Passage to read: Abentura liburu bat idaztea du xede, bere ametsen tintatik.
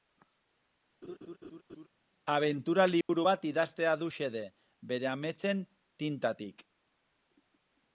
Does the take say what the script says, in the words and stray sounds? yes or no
no